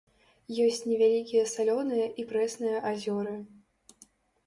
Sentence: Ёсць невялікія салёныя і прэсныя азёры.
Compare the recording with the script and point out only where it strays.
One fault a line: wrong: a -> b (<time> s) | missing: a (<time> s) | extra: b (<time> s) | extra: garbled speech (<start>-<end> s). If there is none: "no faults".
no faults